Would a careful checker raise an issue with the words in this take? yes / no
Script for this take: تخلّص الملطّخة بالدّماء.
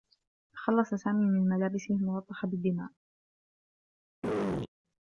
yes